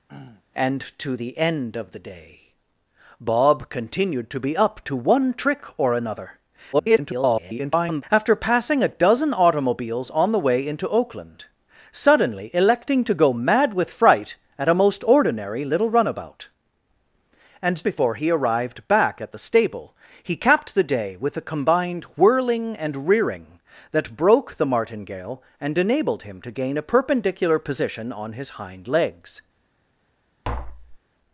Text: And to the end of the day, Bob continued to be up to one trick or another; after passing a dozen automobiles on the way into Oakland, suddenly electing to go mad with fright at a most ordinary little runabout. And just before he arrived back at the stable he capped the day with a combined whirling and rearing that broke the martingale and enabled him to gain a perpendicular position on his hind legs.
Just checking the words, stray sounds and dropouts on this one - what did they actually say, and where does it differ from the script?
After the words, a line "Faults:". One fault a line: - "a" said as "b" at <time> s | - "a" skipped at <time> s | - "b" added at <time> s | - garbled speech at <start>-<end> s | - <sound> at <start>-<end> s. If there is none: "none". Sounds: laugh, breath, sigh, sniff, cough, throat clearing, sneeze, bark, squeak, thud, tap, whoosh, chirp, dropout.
And to the end of the day, Bob continued to be up to one trick or another; [garbled] after passing a dozen automobiles on the way into Oakland, suddenly electing to go mad with fright at a most ordinary little runabout. And before he arrived back at the stable he capped the day with a combined whirling and rearing that broke the martingale and enabled him to gain a perpendicular position on his hind legs.
Faults:
- throat clearing at 0.1-0.4 s
- garbled speech at 6.7-8.0 s
- "just" skipped at 17.8 s
- tap at 30.4-31.0 s